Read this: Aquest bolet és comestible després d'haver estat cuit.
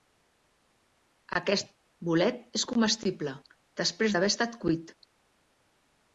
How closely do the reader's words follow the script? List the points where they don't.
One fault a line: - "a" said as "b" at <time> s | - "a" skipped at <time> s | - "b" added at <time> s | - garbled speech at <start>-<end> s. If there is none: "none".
none